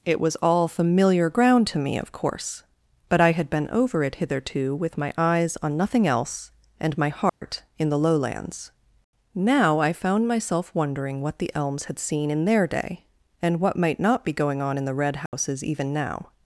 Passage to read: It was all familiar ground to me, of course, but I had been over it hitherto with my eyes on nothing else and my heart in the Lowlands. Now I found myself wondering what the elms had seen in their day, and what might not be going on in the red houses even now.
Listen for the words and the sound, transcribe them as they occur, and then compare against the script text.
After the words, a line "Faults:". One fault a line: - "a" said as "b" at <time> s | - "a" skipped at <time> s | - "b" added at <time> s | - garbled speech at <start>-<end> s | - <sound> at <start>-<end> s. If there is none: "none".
It was all familiar ground to me, of course, but I had been over it hitherto with my eyes on nothing else and my heart in the Lowlands. Now I found myself wondering what the elms had seen in their day, and what might not be going on in the red houses even now.
Faults:
- dropout at 7.3-7.4 s
- dropout at 15.3-15.3 s